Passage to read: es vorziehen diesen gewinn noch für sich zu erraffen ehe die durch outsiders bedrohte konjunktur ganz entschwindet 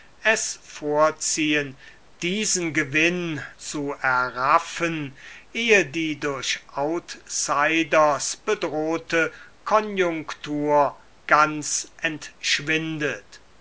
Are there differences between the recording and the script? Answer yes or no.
yes